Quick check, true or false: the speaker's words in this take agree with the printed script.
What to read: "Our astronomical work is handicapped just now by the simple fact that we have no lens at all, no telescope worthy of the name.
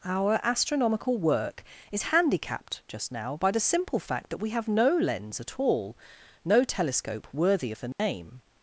true